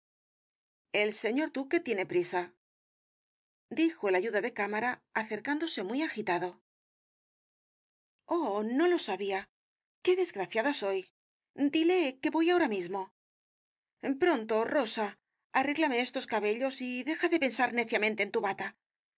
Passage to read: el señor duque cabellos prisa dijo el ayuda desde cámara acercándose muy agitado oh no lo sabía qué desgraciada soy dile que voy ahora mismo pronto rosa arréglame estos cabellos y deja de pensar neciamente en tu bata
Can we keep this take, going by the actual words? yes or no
no